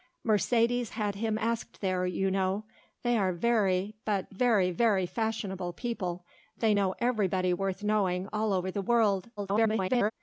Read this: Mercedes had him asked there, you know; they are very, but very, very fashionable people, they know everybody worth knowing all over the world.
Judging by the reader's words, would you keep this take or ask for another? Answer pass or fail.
fail